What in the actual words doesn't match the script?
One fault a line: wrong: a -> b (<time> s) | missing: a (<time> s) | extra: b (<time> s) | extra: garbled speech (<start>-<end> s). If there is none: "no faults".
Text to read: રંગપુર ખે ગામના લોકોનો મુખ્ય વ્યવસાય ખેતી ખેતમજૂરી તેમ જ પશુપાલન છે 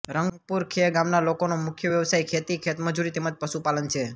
no faults